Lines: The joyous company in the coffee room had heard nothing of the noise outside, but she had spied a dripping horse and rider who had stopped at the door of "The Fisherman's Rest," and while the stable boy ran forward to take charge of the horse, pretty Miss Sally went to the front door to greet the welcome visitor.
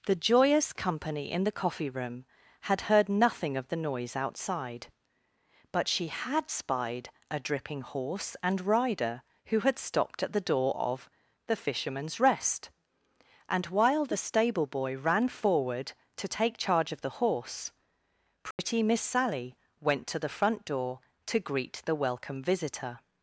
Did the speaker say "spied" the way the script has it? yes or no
yes